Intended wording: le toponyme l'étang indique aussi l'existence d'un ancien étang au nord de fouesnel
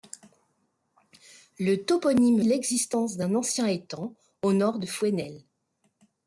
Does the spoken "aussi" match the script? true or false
false